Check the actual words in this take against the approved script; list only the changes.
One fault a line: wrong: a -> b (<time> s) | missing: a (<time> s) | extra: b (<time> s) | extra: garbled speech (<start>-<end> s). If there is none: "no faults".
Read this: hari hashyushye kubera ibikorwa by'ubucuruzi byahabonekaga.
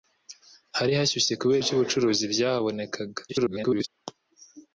missing: ibikorwa (1.6 s)
extra: garbled speech (3.3-3.9 s)